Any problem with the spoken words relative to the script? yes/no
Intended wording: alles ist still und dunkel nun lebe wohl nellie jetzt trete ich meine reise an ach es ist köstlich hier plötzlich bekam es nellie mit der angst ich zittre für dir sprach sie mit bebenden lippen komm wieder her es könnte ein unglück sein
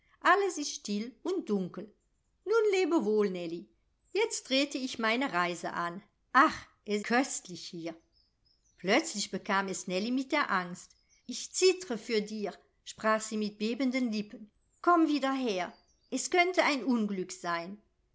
yes